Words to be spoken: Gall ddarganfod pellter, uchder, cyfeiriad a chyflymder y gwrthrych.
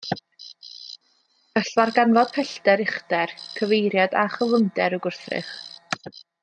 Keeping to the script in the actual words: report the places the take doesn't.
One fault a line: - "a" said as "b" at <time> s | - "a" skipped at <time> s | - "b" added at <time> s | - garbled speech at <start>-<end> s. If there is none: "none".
none